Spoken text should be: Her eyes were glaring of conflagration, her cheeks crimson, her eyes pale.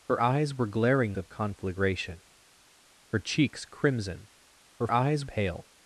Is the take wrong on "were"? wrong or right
right